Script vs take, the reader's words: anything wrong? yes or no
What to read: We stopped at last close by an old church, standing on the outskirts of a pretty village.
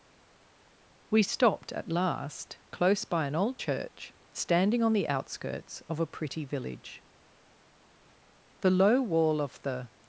yes